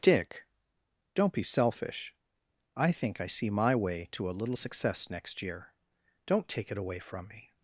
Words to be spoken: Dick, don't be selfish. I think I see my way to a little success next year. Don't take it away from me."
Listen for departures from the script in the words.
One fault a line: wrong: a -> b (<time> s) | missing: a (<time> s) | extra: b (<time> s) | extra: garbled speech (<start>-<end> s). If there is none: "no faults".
no faults